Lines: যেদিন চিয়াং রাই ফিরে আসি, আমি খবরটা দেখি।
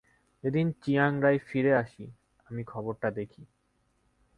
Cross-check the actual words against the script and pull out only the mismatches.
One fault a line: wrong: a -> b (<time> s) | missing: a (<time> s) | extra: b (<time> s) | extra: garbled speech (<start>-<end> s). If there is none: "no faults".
no faults